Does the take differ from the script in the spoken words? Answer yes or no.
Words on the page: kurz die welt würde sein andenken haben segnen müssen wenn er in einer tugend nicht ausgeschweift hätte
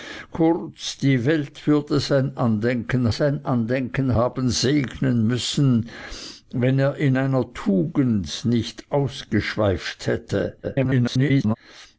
yes